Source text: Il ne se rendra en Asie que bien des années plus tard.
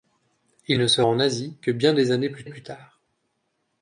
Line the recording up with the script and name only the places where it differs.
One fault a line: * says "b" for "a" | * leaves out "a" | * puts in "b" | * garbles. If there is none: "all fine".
* leaves out "rendra"
* puts in "plus"